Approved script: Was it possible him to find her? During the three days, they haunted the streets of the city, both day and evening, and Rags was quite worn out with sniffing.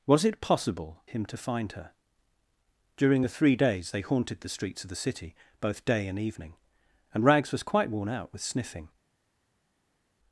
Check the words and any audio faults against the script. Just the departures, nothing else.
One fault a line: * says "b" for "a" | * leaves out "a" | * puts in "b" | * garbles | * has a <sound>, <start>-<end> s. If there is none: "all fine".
all fine